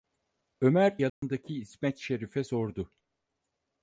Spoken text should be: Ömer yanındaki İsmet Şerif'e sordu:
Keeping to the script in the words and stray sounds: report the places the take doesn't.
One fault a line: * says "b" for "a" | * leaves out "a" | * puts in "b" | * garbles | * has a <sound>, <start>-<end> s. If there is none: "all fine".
* has a dropout, 1.1-1.2 s